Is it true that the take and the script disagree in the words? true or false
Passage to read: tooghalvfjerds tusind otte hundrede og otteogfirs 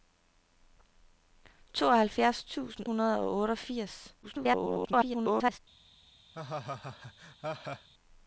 true